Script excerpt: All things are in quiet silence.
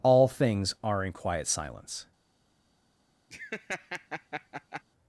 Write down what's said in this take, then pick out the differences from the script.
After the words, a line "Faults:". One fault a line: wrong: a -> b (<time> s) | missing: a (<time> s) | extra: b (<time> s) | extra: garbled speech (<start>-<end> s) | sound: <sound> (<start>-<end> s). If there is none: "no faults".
All things are in quiet silence.
Faults:
sound: laugh (3.3-4.8 s)